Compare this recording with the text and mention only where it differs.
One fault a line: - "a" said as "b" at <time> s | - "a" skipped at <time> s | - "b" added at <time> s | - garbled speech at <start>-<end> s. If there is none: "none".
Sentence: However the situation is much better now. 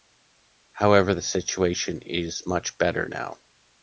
none